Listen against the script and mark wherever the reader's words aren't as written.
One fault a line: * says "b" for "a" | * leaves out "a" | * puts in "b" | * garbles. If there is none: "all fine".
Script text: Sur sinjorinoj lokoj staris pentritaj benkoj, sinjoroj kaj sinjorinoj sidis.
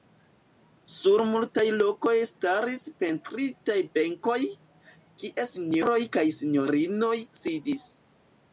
* says "multaj" for "sinjorinoj"
* puts in "kie"